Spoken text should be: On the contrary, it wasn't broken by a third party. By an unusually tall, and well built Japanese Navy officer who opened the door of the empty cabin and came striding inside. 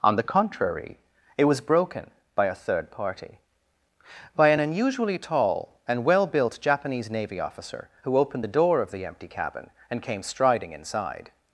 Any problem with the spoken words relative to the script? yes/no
yes